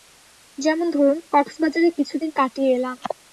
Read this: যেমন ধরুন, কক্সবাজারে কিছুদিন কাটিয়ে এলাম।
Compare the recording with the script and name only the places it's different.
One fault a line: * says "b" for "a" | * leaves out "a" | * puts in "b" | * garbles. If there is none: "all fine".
all fine